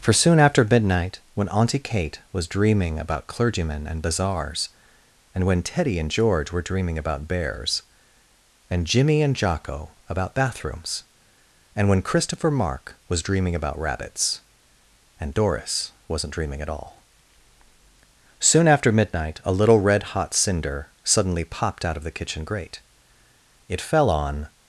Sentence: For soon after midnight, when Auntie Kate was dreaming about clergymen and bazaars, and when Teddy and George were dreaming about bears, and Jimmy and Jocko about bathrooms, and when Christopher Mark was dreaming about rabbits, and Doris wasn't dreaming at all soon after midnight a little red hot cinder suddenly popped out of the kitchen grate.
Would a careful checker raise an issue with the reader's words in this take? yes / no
yes